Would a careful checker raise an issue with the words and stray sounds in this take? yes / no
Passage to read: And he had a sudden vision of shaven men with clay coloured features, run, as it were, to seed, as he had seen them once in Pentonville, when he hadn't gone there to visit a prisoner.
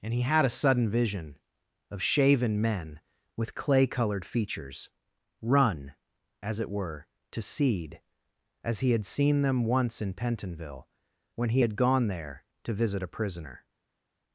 yes